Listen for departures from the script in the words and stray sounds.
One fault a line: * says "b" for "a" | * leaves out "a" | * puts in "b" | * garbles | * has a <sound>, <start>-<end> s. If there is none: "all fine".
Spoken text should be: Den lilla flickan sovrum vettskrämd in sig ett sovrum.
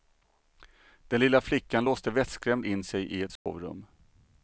* says "låste" for "sovrum"
* puts in "i"
* has a dropout, 3.4-3.5 s